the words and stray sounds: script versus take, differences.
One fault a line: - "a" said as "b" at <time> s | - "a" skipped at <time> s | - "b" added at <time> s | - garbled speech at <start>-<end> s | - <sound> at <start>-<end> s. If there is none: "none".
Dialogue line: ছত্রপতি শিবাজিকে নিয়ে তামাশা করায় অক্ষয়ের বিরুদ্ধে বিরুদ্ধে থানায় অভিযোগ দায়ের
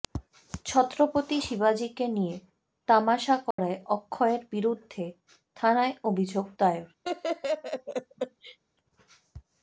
- dropout at 3.5-3.6 s
- "বিরুদ্ধে" skipped at 5.0 s
- laugh at 7.0-8.6 s